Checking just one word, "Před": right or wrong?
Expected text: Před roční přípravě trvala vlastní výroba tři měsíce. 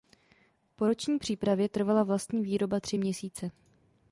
wrong